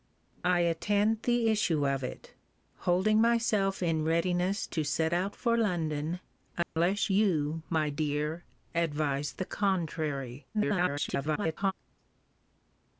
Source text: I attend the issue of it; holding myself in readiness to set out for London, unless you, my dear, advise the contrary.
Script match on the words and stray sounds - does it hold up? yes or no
no